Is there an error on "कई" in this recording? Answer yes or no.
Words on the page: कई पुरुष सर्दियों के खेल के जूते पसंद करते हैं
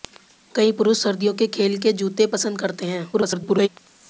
no